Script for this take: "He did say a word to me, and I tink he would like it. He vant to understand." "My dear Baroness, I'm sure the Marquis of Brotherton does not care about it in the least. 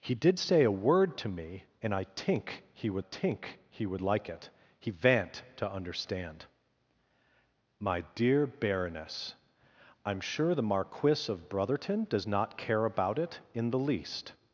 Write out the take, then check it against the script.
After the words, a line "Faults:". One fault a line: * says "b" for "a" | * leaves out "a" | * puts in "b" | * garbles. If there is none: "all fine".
"He did say a word to me, and I tink he would tink he would like it. He vant to understand." "My dear Baroness, I'm sure the Marquis of Brotherton does not care about it in the least.
Faults:
* puts in "tink he would"